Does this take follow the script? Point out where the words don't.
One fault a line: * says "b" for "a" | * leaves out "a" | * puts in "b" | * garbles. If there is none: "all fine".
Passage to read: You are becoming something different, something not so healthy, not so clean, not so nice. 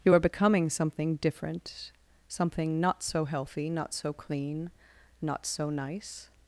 all fine